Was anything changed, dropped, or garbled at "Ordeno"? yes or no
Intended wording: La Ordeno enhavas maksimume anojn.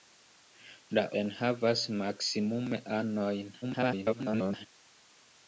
yes